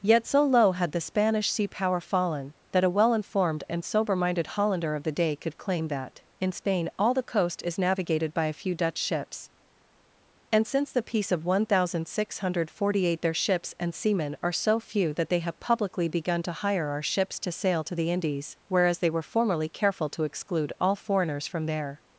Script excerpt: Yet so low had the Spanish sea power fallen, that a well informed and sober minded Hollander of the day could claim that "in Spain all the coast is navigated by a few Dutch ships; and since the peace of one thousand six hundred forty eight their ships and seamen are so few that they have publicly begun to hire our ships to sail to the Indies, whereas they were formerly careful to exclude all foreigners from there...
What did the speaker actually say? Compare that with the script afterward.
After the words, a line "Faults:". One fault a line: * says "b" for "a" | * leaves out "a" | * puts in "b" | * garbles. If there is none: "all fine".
Yet so low had the Spanish sea power fallen, that a well informed and sober minded Hollander of the day could claim that "in Spain all the coast is navigated by a few Dutch ships; and since the peace of one thousand six hundred forty eight their ships and seamen are so few that they have publicly begun to hire our ships to sail to the Indies, whereas they were formerly careful to exclude all foreigners from there...
Faults:
all fine